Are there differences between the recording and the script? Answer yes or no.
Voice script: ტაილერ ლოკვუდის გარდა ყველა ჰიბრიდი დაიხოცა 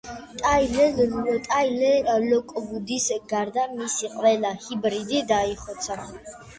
yes